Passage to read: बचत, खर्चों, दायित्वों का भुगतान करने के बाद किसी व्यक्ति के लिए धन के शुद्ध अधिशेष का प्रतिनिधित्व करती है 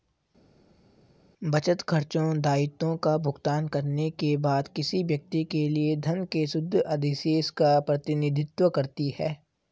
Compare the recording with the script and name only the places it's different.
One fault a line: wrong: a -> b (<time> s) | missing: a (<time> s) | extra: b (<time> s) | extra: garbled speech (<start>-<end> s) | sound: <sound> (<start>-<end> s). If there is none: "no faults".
no faults